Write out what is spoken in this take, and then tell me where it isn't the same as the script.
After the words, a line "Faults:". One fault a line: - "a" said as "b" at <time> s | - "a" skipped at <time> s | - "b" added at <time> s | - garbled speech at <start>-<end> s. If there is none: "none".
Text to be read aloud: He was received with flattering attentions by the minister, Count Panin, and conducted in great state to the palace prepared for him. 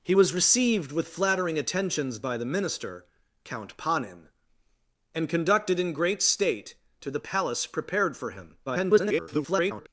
He was received with flattering attentions by the minister, Count Panin, and conducted in great state to the palace prepared for him. [garbled]
Faults:
- garbled speech at 8.7-9.9 s